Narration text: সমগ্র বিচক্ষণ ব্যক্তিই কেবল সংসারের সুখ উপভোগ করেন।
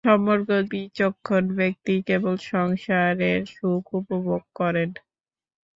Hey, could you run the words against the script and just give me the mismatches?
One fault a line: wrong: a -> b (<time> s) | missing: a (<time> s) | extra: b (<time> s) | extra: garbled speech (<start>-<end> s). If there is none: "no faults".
no faults